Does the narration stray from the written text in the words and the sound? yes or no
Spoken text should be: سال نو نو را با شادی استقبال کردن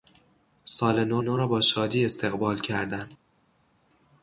no